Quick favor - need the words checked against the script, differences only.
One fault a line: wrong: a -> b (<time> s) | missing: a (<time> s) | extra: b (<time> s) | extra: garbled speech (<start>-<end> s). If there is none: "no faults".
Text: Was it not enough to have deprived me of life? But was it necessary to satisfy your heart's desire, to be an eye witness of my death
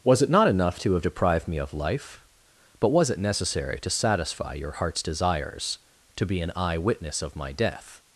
wrong: desire -> desires (5.0 s)